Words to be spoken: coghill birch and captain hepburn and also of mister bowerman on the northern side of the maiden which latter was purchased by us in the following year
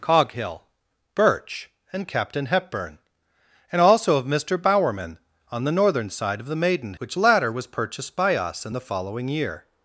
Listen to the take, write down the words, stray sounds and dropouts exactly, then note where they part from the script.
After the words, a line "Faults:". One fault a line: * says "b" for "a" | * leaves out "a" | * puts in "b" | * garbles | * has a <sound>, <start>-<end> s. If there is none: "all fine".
coghill birch and captain hepburn and also of mister bowerman on the northern side of the maiden which latter was purchased by us in the following year
Faults:
all fine